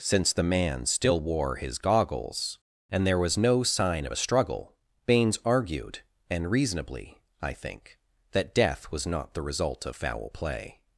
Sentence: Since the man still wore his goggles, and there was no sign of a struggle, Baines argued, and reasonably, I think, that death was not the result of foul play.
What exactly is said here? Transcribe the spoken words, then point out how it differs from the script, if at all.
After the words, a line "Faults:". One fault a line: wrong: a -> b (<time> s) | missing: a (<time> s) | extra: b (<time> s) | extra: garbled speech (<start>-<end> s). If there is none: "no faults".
Since the man still wore his goggles, and there was no sign of a struggle, Baines argued, and reasonably, I think, that death was not the result of foul play.
Faults:
no faults